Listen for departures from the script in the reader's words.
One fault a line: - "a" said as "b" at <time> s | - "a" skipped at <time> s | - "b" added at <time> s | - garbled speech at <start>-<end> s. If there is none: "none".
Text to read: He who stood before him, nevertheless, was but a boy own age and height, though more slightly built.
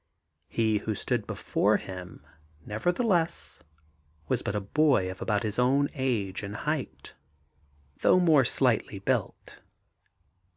- "of about his" added at 5.1 s